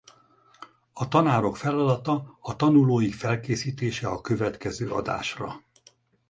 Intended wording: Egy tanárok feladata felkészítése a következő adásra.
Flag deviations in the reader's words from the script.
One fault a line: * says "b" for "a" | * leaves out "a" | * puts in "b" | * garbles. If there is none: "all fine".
* says "A" for "Egy"
* puts in "a tanulóik"